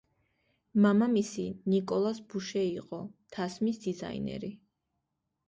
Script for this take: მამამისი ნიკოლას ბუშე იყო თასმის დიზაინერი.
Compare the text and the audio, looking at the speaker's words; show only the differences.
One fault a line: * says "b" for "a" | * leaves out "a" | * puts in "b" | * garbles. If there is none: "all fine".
all fine